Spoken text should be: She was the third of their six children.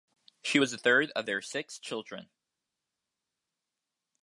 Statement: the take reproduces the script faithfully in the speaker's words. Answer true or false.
true